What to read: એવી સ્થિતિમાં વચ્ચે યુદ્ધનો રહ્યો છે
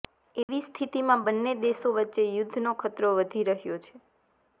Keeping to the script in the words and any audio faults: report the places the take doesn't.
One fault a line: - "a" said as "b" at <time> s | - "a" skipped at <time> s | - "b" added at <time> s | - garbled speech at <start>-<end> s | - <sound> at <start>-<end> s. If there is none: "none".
- dropout at 0.4-0.5 s
- "બંને દેશો" added at 1.3 s
- "ખતરો વધી" added at 2.8 s